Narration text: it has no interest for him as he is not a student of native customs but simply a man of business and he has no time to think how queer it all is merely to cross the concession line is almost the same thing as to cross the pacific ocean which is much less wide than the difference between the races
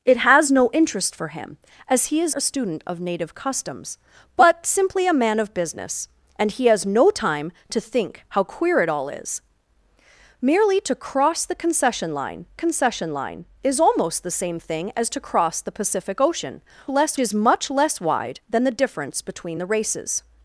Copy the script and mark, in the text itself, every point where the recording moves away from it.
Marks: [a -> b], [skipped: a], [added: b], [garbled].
it has no interest for him as he is [skipped: not] a student of native customs but simply a man of business and he has no time to think how queer it all is merely to cross the concession line [added: concession line] is almost the same thing as to cross the pacific ocean [which -> less] is much less wide than the difference between the races